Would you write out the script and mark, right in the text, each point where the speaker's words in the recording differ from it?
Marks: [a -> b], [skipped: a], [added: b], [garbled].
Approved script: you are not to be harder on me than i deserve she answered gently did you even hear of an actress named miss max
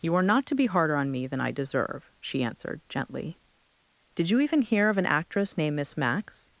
you are not to be harder on me than i deserve she answered gently did you even hear of an actress named miss max